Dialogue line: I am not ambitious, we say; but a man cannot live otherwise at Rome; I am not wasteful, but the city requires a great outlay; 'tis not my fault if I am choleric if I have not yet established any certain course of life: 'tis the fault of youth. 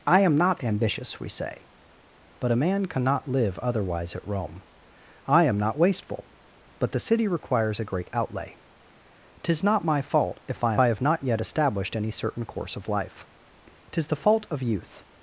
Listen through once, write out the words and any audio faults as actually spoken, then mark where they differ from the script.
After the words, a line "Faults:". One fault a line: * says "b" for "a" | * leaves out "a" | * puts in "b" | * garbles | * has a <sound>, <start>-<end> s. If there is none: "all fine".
I am not ambitious, we say; but a man cannot live otherwise at Rome; I am not wasteful, but the city requires a great outlay; 'tis not my fault if I I have not yet established any certain course of life: 'tis the fault of youth.
Faults:
* leaves out "am choleric if"